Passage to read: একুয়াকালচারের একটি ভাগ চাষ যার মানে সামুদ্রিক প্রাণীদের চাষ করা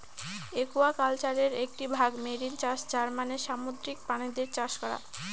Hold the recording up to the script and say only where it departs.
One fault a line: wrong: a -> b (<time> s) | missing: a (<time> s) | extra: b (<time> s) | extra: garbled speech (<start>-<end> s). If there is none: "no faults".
extra: মেরিন (2.2 s)